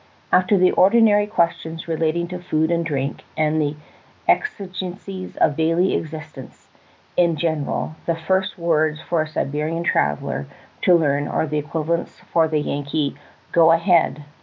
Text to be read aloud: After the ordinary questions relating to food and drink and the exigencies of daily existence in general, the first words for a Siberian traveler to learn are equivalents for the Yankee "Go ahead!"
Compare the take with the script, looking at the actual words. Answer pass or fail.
fail